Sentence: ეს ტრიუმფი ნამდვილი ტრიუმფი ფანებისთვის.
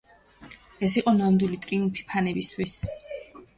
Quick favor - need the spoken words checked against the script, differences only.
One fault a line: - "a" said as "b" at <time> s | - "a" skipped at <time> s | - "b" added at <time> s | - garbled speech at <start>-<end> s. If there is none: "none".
- "ტრიუმფი" said as "იყო" at 1.0 s